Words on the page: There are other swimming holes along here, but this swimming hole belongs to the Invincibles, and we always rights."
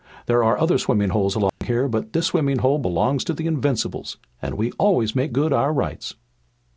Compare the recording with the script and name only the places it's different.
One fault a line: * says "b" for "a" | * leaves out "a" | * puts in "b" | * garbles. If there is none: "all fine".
* puts in "make good our"